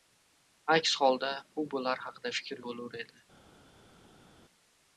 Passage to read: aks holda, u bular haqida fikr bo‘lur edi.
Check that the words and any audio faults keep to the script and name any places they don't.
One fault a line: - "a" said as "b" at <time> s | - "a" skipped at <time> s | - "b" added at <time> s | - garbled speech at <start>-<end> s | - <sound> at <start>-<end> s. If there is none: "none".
none